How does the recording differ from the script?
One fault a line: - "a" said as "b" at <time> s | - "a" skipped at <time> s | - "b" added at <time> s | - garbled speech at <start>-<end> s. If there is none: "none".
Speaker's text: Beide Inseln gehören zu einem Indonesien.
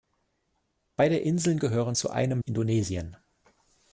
none